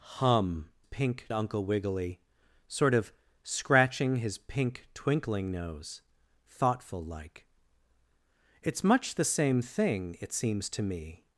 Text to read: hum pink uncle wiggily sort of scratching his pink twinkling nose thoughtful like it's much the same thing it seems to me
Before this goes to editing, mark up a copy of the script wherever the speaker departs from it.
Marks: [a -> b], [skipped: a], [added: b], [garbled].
hum pink uncle wiggily sort of scratching his pink twinkling nose thoughtful like it's much the same thing it seems to me